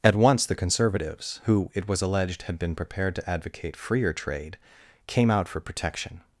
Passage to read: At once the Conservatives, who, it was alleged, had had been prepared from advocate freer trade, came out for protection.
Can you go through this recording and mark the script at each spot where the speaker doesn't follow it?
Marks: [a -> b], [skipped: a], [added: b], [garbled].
At once the Conservatives, who, it was alleged, had [skipped: had] been prepared [from -> to] advocate freer trade, came out for protection.